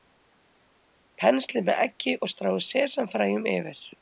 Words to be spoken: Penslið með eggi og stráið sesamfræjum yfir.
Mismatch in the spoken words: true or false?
false